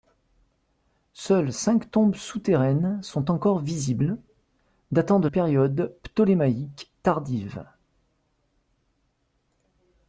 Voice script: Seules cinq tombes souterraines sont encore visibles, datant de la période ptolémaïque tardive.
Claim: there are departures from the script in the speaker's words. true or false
true